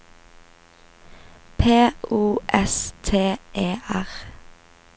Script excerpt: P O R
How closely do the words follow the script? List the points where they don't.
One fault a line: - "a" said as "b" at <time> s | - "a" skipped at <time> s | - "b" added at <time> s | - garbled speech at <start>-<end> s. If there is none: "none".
- "S T E" added at 2.5 s